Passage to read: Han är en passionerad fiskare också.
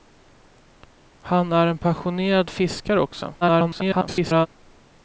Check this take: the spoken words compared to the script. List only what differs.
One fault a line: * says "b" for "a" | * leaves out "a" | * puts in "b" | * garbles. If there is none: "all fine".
* garbles